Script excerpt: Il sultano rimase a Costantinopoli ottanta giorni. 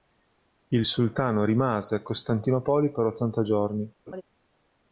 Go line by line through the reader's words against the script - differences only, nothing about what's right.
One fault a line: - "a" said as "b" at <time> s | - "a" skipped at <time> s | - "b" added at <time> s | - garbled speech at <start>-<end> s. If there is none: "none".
- "per" added at 2.9 s